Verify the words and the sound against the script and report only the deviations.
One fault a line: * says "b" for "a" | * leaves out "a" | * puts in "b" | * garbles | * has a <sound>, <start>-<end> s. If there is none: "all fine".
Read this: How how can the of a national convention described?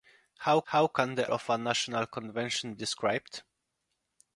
all fine